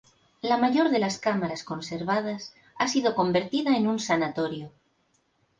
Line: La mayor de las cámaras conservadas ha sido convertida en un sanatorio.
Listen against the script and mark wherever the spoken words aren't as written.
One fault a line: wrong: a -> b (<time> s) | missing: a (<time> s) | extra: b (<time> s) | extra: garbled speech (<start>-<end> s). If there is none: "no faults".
no faults